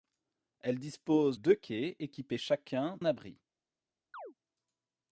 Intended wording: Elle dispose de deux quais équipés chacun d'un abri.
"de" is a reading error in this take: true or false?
true